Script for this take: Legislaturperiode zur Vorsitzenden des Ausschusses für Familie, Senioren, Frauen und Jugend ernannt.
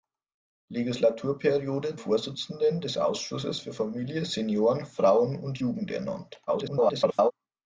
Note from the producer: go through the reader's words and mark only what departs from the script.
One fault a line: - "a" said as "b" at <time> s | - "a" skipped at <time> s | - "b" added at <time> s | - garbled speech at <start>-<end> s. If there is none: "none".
- "zur" skipped at 2.0 s
- garbled speech at 6.5-7.3 s